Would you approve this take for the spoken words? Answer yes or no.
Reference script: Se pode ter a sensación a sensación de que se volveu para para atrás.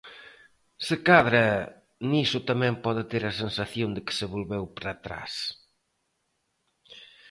no